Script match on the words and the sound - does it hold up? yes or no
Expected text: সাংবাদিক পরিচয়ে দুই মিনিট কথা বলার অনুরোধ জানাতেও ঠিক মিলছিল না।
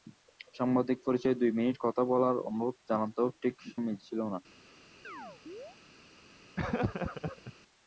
no